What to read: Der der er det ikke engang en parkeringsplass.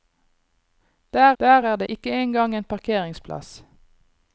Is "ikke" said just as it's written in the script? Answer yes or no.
yes